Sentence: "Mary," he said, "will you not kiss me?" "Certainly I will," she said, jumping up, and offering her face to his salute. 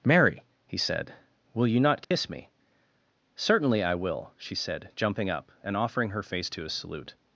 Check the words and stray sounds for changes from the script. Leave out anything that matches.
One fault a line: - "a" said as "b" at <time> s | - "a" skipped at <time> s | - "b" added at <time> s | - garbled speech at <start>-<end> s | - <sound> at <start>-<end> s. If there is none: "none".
- dropout at 2.0-2.1 s